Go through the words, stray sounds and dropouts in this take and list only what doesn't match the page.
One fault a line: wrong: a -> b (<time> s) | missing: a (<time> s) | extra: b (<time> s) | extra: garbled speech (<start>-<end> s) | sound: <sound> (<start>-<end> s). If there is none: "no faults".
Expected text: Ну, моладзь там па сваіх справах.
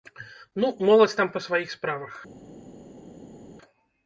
no faults